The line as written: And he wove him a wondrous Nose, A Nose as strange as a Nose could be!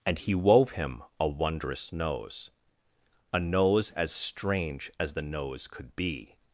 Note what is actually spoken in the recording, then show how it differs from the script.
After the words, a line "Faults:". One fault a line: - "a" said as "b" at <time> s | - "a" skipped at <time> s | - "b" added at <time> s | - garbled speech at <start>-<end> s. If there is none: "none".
And he wove him a wondrous Nose, A Nose as strange as the Nose could be!
Faults:
- "a" said as "the" at 5.1 s